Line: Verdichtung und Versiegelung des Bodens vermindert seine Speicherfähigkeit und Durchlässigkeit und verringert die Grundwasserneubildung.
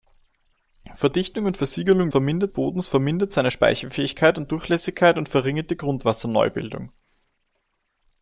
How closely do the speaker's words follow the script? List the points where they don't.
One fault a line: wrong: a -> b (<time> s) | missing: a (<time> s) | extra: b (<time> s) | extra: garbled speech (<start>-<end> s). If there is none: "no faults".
wrong: des -> vermindert (2.1 s)